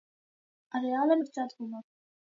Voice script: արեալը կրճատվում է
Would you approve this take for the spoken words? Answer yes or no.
yes